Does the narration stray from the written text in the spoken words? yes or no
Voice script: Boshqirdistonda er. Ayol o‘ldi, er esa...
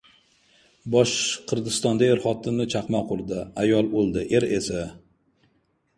yes